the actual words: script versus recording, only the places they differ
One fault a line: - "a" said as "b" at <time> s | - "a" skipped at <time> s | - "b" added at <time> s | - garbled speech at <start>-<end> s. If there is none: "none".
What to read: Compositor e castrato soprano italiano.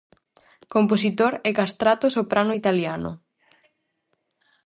none